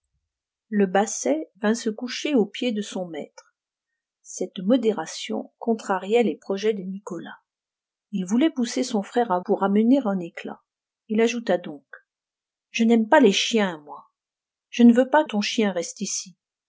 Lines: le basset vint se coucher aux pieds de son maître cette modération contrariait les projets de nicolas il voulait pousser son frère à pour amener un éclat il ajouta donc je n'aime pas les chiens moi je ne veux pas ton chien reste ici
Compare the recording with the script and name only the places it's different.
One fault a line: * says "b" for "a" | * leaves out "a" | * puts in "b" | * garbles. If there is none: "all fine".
all fine